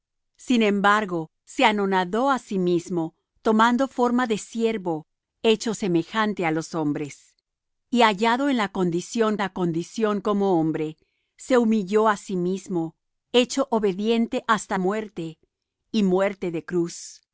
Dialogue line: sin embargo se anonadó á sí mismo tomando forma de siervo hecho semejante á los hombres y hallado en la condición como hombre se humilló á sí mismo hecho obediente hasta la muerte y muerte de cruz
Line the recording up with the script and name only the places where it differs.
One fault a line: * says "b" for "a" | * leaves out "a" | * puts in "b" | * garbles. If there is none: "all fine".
* puts in "la condición"
* leaves out "la"